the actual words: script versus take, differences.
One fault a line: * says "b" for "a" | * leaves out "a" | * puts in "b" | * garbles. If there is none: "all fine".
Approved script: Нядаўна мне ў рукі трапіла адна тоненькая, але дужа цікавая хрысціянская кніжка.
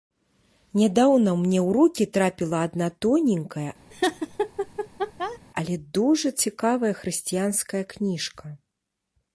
all fine